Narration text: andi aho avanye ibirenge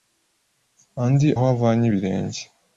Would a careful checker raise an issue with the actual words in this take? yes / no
no